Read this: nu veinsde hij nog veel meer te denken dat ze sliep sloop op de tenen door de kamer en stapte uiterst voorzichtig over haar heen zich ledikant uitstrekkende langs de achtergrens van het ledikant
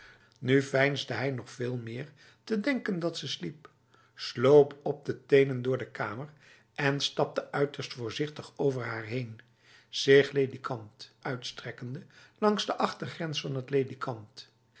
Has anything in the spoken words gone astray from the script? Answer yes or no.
no